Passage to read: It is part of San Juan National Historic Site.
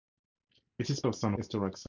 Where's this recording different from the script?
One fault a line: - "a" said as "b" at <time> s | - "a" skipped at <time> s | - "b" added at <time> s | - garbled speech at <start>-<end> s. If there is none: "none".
- "part" skipped at 1.0 s
- "Juan National" skipped at 1.3 s